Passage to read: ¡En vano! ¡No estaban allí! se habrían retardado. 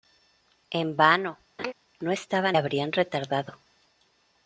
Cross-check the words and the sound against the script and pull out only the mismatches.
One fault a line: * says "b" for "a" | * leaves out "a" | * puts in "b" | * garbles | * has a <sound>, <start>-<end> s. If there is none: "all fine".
* has a laugh, 1.6-1.7 s
* leaves out "allí se"